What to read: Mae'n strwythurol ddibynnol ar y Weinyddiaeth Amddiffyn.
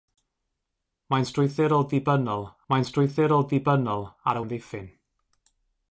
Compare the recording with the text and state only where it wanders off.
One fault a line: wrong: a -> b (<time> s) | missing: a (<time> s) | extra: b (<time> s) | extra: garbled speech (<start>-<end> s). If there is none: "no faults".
extra: mae'n strwythurol ddibynnol (2.7 s)
missing: Weinyddiaeth (4.4 s)